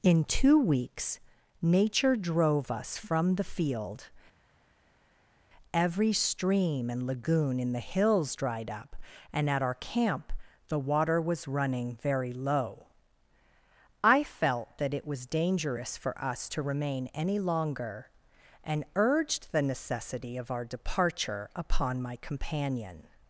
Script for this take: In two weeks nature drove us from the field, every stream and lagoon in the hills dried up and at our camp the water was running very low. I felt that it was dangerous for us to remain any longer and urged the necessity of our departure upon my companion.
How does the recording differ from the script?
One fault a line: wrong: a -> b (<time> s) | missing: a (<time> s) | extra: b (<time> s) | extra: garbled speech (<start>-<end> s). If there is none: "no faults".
no faults